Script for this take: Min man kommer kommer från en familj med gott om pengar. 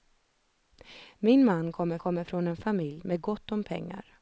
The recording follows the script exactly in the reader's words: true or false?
true